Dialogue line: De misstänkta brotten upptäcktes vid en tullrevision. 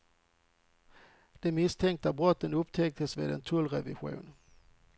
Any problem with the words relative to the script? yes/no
no